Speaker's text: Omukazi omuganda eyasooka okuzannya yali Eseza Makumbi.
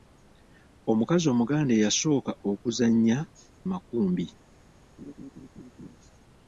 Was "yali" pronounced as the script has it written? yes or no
no